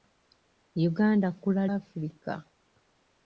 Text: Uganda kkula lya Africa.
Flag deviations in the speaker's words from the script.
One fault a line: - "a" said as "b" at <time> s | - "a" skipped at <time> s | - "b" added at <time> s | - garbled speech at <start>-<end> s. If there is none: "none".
- "lya" skipped at 1.6 s